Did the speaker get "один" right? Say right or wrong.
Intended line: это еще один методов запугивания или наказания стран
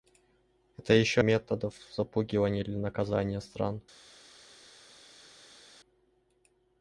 wrong